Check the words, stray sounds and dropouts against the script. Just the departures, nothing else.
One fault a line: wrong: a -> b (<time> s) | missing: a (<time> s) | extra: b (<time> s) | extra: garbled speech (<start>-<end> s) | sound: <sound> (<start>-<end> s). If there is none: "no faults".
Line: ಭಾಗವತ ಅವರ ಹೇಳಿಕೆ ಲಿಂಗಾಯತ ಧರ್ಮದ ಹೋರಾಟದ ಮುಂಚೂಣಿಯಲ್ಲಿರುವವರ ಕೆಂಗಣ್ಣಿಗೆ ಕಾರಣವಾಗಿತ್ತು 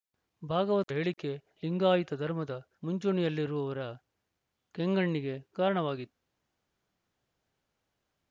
missing: ಅವರ (0.9 s)
missing: ಹೋರಾಟದ (2.5 s)